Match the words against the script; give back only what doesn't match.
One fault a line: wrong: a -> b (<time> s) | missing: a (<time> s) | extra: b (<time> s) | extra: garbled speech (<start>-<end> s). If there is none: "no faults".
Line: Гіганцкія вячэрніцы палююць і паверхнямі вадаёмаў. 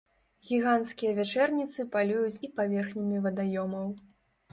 no faults